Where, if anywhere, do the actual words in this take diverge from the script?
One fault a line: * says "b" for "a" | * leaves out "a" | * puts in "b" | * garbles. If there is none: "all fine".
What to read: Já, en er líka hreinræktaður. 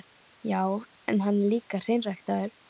* puts in "hann"